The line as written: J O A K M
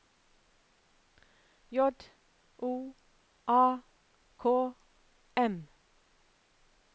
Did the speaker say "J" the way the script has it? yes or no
yes